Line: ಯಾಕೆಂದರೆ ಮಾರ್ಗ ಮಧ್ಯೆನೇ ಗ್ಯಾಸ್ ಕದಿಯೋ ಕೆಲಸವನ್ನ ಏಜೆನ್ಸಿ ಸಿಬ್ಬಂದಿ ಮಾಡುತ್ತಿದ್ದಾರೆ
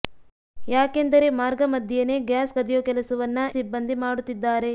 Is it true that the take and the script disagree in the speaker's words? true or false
true